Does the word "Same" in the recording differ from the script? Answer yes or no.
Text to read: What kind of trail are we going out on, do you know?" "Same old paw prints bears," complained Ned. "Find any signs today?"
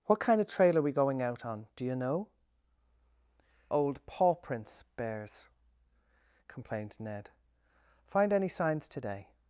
yes